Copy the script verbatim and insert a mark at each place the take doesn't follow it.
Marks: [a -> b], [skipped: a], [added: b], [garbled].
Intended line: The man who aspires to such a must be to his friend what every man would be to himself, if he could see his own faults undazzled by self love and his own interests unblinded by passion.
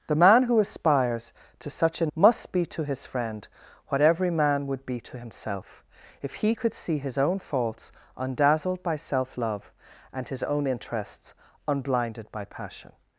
The man who aspires to such a must be to his friend what every man would be to himself, if he could see his own faults undazzled by self love and his own interests unblinded by passion.